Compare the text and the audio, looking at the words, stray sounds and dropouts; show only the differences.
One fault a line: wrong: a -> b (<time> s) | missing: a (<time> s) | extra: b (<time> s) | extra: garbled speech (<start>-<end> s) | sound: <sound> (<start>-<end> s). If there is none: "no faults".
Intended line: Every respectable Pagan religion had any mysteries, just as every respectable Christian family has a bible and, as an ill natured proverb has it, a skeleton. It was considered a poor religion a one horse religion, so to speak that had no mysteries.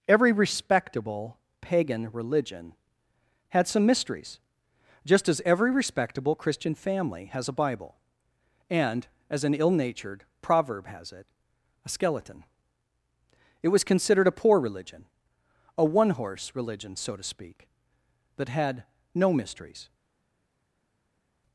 wrong: any -> some (3.7 s)